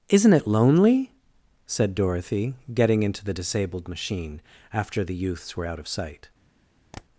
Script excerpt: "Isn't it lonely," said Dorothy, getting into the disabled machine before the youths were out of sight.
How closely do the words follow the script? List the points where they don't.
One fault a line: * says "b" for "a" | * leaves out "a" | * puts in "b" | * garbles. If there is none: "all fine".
* says "after" for "before"